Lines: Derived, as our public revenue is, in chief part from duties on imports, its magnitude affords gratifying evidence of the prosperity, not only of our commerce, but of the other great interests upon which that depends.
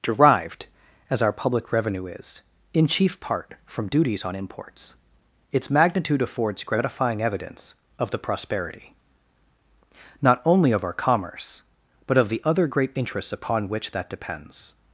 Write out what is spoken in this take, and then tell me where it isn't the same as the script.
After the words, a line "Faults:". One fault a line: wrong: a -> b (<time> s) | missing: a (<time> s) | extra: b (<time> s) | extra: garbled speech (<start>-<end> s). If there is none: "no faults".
Derived, as our public revenue is, in chief part from duties on imports, its magnitude affords gratifying evidence of the prosperity, not only of our commerce, but of the other great interests upon which that depends.
Faults:
no faults